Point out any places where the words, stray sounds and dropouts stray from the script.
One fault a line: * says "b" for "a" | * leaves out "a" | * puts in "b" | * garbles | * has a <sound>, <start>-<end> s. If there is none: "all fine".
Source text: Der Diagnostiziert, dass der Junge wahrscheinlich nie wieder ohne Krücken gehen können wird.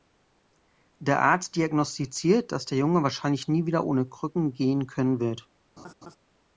* puts in "Arzt"
* has a laugh, 5.8-6.2 s